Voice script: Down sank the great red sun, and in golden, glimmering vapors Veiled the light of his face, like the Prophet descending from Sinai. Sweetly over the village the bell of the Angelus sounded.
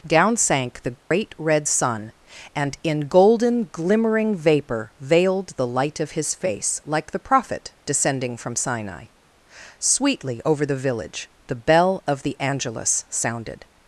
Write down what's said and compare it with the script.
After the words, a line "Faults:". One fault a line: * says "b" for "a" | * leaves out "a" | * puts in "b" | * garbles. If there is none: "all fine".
Down sank the great red sun, and in golden, glimmering vapor Veiled the light of his face, like the Prophet descending from Sinai. Sweetly over the village the bell of the Angelus sounded.
Faults:
* says "vapor" for "vapors"